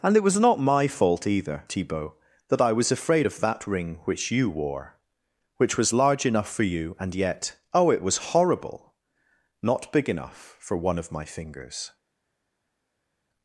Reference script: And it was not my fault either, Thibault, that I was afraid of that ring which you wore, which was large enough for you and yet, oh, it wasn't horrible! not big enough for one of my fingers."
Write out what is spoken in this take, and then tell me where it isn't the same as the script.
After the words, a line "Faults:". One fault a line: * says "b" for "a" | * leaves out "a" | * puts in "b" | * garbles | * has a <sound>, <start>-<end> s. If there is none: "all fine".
And it was not my fault either, Thibault, that I was afraid of that ring which you wore, which was large enough for you and yet, oh, it was horrible! not big enough for one of my fingers."
Faults:
* says "was" for "wasn't"